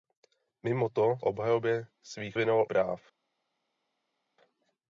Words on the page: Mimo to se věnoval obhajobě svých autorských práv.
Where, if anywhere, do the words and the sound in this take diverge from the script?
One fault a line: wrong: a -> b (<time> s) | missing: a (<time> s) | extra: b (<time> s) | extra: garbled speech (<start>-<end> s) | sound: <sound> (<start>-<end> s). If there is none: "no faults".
missing: se věnoval (1.2 s)
wrong: autorských -> věnoval (2.3 s)